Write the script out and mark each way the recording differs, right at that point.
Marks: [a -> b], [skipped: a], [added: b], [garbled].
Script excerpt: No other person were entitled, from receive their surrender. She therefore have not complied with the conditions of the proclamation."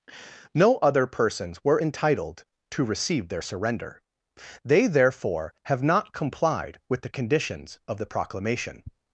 No other [person -> persons] were entitled, [from -> to] receive their surrender. [She -> They] therefore have not complied with the conditions of the proclamation."